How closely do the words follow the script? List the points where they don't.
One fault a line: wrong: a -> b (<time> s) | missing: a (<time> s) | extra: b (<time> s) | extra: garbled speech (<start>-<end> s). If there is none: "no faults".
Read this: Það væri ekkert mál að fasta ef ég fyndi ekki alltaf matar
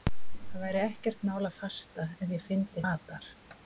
missing: ekki alltaf (2.9 s)